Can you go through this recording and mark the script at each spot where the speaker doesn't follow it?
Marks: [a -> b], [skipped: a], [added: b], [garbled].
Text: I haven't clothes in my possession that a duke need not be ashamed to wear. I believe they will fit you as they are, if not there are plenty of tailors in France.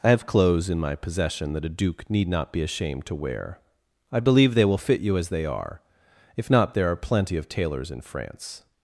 I [haven't -> have] clothes in my possession that a duke need not be ashamed to wear. I believe they will fit you as they are, if not there are plenty of tailors in France.